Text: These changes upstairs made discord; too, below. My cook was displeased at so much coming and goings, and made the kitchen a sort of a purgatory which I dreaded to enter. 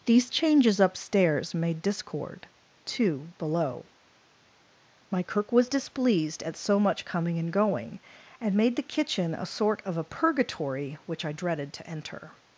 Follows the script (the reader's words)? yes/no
no